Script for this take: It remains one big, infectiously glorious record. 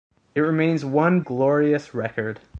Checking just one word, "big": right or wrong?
wrong